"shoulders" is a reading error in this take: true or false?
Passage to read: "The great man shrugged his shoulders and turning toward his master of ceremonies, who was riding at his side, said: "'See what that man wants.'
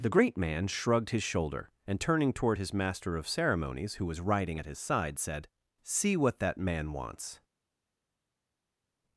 true